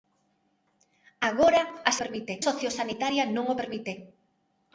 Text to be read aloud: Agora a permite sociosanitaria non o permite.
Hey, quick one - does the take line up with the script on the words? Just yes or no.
yes